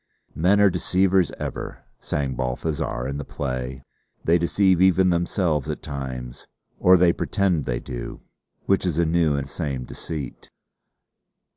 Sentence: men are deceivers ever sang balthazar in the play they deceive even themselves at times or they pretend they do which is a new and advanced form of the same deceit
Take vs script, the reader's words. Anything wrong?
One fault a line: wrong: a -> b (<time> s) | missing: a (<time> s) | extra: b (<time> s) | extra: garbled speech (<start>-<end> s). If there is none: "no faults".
missing: advanced form of (9.4 s)